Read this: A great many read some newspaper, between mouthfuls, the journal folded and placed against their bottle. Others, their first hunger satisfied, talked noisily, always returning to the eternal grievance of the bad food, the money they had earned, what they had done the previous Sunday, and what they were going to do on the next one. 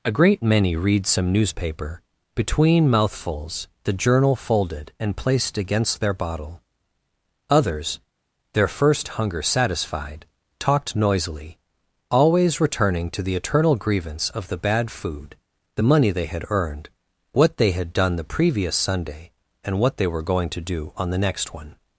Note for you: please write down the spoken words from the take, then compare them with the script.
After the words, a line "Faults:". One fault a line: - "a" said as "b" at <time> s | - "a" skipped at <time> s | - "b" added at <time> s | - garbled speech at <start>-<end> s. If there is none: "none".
A great many read some newspaper, between mouthfuls, the journal folded and placed against their bottle. Others, their first hunger satisfied, talked noisily, always returning to the eternal grievance of the bad food, the money they had earned, what they had done the previous Sunday, and what they were going to do on the next one.
Faults:
none